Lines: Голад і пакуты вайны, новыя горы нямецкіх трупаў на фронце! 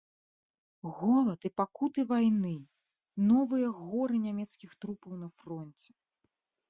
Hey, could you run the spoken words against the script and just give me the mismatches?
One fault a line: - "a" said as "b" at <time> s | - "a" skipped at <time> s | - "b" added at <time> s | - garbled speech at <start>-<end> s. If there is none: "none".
none